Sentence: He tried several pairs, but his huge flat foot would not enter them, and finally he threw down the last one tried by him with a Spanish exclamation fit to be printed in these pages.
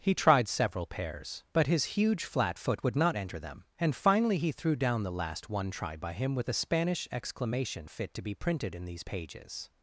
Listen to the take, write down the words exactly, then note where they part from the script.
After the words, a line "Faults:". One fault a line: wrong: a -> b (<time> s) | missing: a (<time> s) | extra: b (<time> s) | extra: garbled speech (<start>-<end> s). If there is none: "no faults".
He tried several pairs, but his huge flat foot would not enter them, and finally he threw down the last one tried by him with a Spanish exclamation fit to be printed in these pages.
Faults:
no faults